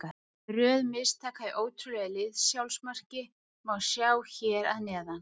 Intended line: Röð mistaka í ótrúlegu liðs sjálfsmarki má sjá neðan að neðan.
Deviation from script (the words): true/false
true